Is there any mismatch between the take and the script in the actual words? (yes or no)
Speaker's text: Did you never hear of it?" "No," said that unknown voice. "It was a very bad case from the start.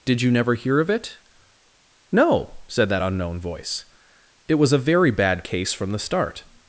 no